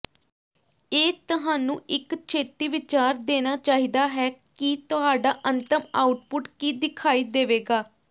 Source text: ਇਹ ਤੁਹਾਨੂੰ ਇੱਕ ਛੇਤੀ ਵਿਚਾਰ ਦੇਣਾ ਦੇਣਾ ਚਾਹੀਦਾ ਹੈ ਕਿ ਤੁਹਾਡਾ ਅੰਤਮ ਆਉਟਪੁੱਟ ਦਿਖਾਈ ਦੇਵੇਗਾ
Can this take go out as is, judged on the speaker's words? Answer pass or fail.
fail